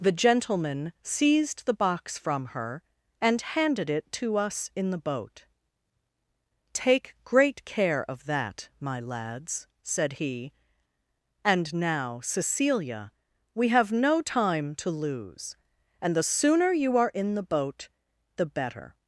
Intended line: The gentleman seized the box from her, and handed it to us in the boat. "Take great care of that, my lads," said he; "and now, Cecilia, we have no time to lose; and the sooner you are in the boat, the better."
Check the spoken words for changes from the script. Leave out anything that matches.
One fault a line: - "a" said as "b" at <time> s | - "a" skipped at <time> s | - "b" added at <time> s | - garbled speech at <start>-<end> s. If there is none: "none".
none